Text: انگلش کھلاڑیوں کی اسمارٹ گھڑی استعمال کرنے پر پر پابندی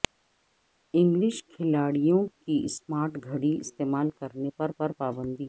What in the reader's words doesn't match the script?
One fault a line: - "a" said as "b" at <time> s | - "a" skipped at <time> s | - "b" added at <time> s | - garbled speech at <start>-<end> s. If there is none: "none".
none